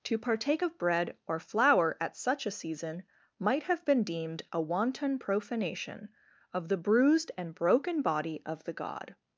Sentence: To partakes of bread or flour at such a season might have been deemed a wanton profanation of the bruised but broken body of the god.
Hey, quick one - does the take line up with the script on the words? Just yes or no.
no